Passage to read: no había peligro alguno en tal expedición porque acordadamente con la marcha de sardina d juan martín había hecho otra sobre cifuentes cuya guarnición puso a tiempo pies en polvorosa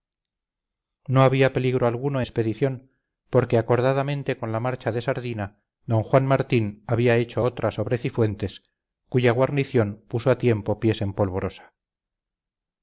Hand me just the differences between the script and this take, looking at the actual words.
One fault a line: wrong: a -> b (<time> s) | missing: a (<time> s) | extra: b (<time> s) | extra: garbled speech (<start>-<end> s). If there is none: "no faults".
missing: en tal (2.2 s)